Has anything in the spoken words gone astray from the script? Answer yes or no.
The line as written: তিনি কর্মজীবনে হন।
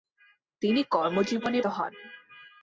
no